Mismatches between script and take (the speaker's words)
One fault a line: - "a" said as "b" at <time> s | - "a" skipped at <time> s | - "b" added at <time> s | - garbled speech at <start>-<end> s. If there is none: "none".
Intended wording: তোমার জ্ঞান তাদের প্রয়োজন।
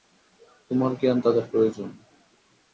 none